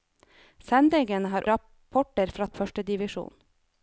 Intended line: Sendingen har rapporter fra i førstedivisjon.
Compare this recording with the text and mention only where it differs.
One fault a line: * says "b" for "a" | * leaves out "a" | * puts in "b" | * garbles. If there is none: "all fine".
all fine